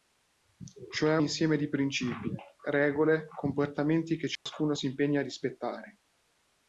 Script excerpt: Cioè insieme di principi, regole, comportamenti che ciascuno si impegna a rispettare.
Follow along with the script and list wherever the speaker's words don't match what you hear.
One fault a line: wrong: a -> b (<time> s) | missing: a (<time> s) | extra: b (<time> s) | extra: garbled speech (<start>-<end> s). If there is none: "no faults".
no faults